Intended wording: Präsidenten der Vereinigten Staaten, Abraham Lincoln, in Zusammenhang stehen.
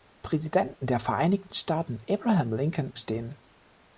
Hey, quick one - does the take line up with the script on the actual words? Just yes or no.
no